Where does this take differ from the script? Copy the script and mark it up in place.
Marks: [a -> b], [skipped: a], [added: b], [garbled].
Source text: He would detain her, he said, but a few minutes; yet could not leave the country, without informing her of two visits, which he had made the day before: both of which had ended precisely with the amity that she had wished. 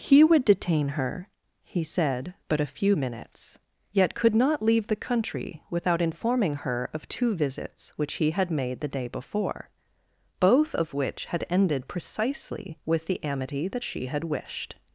He would detain her, he said, but a few minutes; yet could not leave the country, without informing her of two visits, which he had made the day before: both of which had ended precisely with the amity that she had wished.